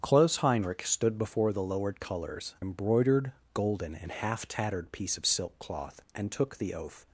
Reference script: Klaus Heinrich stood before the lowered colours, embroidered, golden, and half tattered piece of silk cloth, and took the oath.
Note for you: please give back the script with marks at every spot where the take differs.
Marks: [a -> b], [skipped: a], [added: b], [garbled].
Klaus Heinrich stood before the lowered colours, embroidered, golden, and half tattered piece of silk cloth, and took the oath.